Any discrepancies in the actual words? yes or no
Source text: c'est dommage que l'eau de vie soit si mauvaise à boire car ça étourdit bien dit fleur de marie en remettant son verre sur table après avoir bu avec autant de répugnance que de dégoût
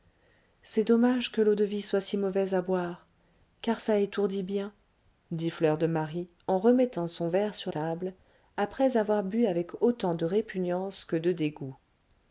no